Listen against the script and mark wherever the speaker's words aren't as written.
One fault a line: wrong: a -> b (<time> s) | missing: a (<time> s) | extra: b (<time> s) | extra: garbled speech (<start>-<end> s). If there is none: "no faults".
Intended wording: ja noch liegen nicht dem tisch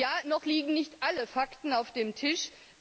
extra: alle fakten auf (1.0 s)